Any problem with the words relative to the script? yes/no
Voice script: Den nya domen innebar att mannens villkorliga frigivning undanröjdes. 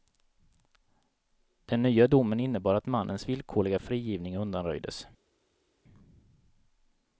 no